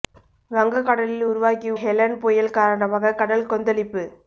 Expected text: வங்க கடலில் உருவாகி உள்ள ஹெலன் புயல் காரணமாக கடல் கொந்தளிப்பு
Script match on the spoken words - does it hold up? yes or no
no